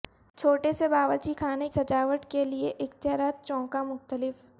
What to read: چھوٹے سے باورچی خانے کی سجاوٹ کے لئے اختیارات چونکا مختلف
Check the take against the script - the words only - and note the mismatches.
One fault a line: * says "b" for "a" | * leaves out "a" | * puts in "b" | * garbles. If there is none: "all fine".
* leaves out "کی"